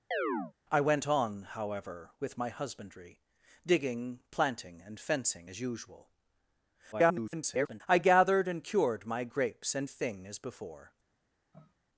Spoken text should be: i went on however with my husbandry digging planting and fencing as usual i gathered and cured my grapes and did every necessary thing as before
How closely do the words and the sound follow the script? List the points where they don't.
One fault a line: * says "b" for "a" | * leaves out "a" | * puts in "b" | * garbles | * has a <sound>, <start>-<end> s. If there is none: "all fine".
* has a chirp, 0.1-0.5 s
* garbles
* leaves out "did every necessary"
* has a sniff, 11.5-11.7 s